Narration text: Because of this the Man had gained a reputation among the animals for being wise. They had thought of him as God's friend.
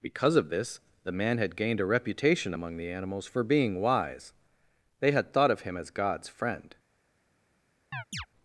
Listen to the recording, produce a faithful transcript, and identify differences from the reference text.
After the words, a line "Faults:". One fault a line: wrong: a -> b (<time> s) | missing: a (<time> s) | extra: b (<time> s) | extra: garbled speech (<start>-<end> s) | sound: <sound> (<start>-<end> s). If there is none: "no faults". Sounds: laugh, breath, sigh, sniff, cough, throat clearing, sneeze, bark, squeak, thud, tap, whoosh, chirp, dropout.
Because of this the Man had gained a reputation among the animals for being wise. They had thought of him as God's friend.
Faults:
sound: chirp (7.9-8.3 s)